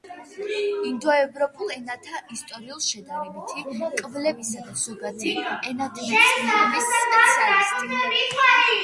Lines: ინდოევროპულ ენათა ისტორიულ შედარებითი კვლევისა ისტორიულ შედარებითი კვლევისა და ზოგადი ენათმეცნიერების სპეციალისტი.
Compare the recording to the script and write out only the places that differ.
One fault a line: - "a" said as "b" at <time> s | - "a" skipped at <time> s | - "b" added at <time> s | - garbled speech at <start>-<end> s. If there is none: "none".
- "ისტორიულ შედარებითი კვლევისა" skipped at 4.6 s